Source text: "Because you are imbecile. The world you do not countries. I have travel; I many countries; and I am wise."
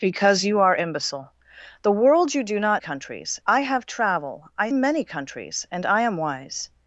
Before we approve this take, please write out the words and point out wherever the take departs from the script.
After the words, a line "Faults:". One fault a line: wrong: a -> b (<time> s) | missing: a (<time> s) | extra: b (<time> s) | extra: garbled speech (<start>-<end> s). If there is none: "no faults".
"Because you are imbecile. The world you do not countries. I have travel; I many countries; and I am wise."
Faults:
no faults